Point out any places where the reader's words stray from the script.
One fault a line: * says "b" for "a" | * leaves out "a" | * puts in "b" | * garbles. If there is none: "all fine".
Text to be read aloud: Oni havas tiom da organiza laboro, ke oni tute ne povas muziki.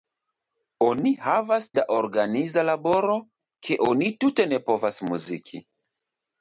* leaves out "tiom"